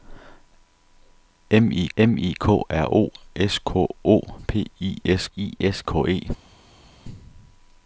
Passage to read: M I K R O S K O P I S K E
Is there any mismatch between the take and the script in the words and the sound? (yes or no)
yes